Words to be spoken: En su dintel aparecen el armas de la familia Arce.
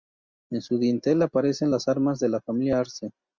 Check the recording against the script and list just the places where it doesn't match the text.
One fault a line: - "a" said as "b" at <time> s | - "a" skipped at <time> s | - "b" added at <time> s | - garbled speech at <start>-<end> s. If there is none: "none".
- "el" said as "las" at 1.7 s